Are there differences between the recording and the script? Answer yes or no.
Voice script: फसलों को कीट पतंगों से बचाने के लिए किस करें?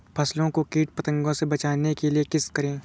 no